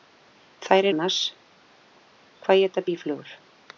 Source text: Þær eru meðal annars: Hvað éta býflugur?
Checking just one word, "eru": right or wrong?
wrong